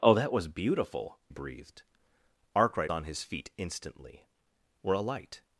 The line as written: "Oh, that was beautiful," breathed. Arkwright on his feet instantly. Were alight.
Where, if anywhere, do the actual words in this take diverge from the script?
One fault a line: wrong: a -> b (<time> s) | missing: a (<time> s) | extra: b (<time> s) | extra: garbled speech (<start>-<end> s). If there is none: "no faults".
no faults